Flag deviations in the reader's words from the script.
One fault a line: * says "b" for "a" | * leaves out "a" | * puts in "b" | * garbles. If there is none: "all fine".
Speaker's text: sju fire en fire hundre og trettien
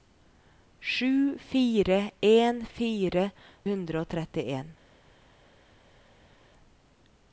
all fine